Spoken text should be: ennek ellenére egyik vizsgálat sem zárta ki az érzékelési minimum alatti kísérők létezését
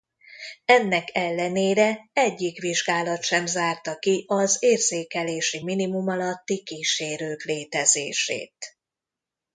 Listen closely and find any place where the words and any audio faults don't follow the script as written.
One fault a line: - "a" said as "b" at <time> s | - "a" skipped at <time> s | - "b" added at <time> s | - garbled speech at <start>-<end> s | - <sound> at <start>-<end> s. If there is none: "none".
none